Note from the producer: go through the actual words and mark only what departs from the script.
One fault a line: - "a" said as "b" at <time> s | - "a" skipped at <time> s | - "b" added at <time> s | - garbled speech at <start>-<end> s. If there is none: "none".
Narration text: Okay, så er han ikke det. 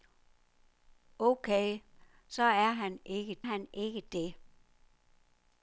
- "han ikke" added at 3.4 s